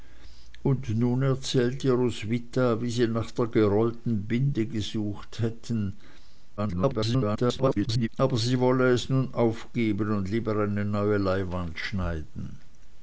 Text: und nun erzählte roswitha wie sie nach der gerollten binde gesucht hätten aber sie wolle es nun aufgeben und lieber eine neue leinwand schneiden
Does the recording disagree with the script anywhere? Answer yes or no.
yes